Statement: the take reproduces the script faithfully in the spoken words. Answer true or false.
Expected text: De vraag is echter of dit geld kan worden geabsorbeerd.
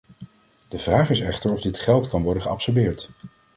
true